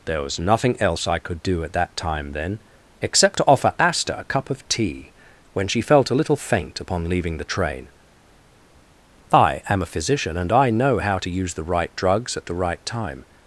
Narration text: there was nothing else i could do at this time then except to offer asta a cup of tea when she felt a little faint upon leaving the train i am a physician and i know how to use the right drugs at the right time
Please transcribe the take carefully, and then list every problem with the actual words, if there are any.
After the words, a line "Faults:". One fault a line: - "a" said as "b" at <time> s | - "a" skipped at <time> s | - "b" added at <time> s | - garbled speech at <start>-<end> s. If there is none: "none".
there was nothing else i could do at that time then except to offer asta a cup of tea when she felt a little faint upon leaving the train i am a physician and i know how to use the right drugs at the right time
Faults:
- "this" said as "that" at 1.7 s